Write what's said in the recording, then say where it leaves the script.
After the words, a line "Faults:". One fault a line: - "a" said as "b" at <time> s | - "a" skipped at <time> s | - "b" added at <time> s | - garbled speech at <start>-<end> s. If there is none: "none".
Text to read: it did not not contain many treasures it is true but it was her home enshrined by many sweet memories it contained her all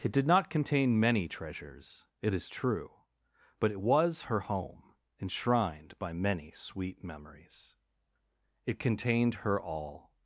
it did not contain many treasures it is true but it was her home enshrined by many sweet memories it contained her all
Faults:
- "not" skipped at 0.5 s